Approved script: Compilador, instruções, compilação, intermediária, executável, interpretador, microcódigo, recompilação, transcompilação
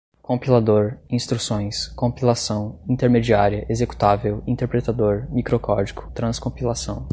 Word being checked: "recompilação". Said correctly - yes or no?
no